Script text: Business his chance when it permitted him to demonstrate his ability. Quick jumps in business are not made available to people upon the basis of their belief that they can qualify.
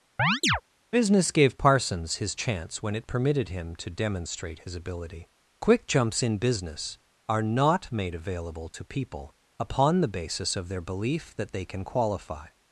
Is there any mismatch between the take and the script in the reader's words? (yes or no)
yes